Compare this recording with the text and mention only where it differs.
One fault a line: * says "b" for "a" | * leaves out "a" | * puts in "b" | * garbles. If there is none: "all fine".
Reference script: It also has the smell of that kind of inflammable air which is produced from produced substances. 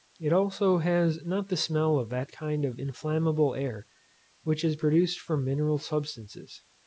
* puts in "not"
* says "mineral" for "produced"